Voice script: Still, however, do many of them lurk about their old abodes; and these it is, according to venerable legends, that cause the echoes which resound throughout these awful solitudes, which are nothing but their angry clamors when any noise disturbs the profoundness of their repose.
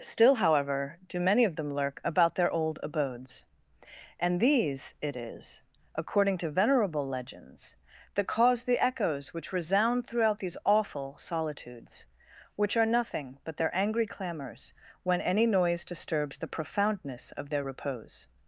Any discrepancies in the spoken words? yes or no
no